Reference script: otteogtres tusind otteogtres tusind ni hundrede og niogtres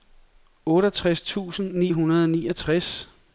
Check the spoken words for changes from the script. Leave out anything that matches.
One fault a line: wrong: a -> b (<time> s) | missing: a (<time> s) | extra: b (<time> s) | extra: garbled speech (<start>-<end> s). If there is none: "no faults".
missing: otteogtres tusind (1.7 s)